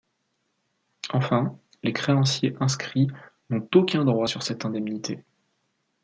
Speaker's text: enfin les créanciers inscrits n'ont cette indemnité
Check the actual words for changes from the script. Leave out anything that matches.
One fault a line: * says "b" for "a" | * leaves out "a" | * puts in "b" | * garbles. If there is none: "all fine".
* puts in "aucun droit sur"